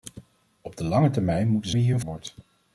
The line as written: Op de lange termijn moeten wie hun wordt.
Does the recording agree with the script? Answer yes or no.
yes